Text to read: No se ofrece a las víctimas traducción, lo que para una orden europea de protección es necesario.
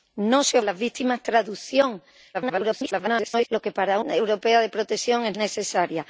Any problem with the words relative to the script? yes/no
yes